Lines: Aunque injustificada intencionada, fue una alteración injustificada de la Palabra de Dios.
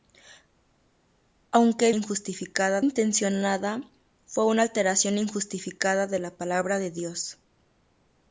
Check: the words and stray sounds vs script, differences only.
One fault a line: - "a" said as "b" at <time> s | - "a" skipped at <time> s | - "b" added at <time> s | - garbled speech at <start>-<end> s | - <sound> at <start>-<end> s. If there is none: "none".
none